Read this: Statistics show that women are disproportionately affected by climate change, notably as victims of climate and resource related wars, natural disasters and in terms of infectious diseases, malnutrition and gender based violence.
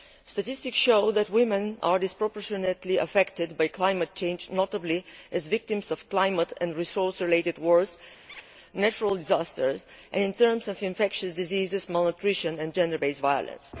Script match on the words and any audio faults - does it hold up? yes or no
no